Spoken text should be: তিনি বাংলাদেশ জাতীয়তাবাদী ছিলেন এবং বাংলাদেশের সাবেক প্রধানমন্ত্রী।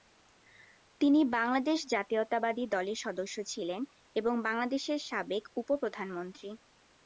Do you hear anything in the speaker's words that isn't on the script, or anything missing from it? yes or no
yes